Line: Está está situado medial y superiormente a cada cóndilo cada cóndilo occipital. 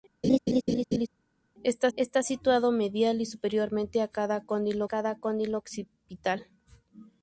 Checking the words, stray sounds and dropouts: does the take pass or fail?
fail